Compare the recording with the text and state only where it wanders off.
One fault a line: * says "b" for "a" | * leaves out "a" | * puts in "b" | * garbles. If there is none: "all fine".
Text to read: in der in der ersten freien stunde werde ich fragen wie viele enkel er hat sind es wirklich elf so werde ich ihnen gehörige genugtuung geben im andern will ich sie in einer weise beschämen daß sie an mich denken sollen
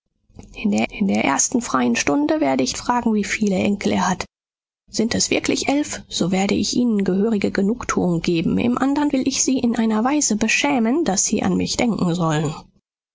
all fine